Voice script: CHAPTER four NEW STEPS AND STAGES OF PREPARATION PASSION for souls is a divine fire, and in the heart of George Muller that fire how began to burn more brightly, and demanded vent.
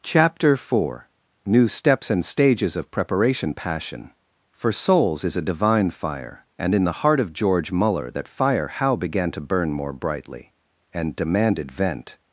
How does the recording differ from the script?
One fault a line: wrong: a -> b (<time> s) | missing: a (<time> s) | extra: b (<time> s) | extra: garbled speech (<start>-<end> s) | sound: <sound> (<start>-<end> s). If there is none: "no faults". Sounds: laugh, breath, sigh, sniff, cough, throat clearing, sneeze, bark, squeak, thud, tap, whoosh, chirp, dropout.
no faults